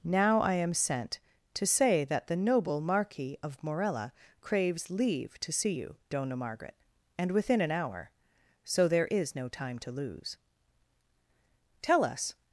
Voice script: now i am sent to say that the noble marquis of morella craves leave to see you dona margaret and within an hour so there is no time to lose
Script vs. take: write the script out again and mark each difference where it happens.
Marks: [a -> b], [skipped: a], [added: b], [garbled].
now i am sent to say that the noble marquis of morella craves leave to see you dona margaret and within an hour so there is no time to lose [added: tell us]